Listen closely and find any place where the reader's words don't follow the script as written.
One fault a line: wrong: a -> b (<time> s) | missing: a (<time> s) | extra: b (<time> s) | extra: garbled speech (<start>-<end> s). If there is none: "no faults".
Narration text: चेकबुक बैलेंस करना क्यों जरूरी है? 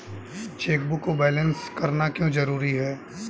extra: को (1.0 s)